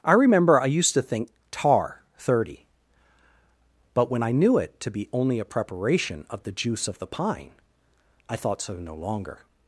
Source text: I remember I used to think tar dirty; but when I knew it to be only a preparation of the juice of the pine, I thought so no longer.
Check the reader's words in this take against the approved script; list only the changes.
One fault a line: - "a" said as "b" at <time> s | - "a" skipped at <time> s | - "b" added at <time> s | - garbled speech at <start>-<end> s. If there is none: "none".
- "dirty" said as "thirty" at 2.2 s